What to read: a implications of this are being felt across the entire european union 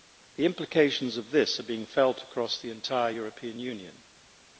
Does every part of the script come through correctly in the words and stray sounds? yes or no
no